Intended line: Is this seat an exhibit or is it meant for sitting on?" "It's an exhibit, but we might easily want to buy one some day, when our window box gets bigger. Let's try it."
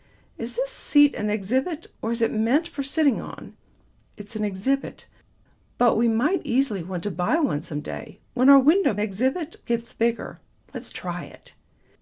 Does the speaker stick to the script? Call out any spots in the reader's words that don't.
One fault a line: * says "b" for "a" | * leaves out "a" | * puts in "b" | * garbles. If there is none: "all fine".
* says "exhibit" for "box"